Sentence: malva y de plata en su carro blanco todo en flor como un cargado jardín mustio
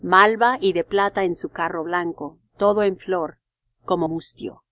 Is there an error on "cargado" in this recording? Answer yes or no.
yes